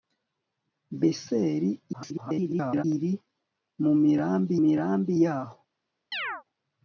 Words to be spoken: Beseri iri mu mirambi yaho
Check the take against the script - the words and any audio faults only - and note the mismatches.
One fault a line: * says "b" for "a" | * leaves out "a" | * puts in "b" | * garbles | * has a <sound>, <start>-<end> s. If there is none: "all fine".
* garbles
* puts in "mirambi"
* has a chirp, 6.1-6.4 s